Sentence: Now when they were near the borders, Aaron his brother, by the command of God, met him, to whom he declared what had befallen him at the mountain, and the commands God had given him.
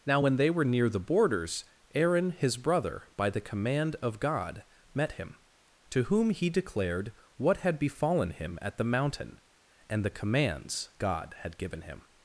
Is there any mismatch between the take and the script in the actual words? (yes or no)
no